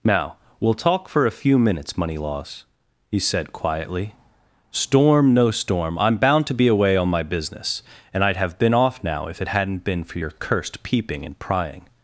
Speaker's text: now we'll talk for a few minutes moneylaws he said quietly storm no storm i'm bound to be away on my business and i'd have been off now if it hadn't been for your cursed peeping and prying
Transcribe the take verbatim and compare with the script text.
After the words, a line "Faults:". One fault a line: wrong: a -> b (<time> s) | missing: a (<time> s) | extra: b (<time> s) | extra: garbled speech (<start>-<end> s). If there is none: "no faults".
now we'll talk for a few minutes moneylaws he said quietly storm no storm i'm bound to be away on my business and i'd have been off now if it hadn't been for your cursed peeping and prying
Faults:
no faults